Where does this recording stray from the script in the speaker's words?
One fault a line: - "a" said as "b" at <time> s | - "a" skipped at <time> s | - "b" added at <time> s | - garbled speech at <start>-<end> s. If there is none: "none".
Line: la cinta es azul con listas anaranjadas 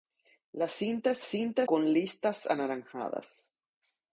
- "azul" said as "cinta" at 1.2 s